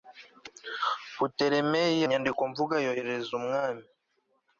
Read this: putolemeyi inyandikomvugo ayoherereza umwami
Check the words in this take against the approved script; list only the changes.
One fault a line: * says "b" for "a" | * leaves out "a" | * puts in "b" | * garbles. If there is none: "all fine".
all fine